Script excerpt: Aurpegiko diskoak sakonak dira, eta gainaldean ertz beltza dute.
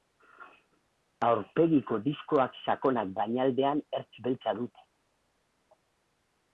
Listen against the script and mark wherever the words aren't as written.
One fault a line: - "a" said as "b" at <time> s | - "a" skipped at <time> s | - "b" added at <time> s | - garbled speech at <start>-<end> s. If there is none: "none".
- "dira eta" skipped at 3.1 s